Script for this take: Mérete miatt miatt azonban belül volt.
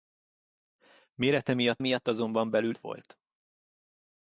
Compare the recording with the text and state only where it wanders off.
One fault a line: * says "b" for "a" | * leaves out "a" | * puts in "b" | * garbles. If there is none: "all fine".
all fine